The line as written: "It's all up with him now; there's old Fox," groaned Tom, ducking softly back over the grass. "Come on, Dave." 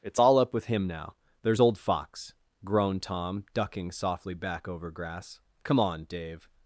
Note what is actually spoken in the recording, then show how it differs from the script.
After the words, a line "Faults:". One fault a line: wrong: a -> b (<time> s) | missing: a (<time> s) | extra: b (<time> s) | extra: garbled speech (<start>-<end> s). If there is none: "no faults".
"It's all up with him now; there's old Fox," groaned Tom, ducking softly back over grass. "Come on, Dave."
Faults:
missing: the (4.9 s)